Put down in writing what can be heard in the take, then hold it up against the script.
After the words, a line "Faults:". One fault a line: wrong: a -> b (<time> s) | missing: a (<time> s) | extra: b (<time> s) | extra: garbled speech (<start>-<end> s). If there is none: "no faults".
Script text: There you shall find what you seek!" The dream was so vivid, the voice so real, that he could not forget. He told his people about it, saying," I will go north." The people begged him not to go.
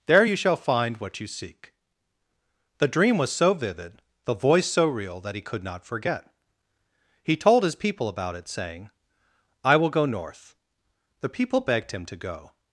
There you shall find what you seek!" The dream was so vivid, the voice so real, that he could not forget. He told his people about it, saying," I will go north." The people begged him to go.
Faults:
missing: not (12.0 s)